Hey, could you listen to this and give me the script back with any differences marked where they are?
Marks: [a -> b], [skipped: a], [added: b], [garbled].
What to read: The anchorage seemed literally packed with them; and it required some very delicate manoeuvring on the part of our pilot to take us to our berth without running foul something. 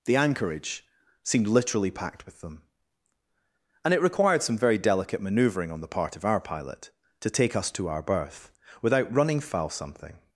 The anchorage seemed literally packed with them; and it required some very delicate manoeuvring on the part of our pilot to take us to our berth without running foul something.